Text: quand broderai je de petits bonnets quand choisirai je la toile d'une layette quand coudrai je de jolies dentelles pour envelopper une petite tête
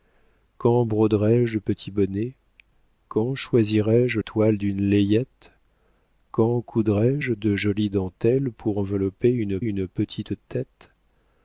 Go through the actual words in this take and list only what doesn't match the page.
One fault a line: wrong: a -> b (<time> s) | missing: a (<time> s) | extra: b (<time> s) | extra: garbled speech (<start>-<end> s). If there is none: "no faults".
missing: la (4.2 s)
extra: une (9.6 s)